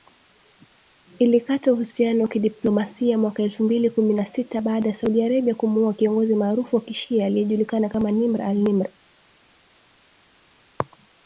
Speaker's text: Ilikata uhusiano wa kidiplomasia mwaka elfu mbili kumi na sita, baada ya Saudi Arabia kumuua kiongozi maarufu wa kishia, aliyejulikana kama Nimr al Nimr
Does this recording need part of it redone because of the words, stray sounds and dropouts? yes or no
no